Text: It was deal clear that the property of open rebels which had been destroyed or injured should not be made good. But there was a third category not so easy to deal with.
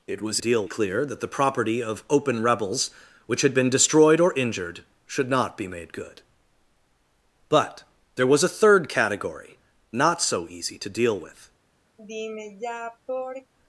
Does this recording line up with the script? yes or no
yes